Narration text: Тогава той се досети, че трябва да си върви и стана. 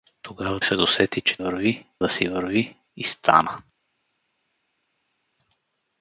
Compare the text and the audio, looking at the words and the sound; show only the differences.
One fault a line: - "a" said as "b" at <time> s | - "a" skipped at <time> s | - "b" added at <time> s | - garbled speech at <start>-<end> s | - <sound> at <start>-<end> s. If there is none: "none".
- "той" skipped at 0.6 s
- "трябва" said as "върви" at 1.4 s